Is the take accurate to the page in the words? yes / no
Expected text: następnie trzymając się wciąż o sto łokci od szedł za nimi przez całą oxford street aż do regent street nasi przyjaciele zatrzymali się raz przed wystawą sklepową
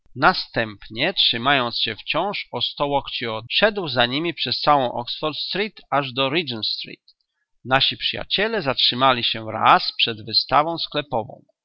yes